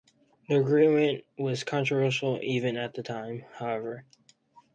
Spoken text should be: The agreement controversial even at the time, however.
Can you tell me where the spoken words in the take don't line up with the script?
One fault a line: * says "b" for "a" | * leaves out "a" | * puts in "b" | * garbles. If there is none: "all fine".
* puts in "was"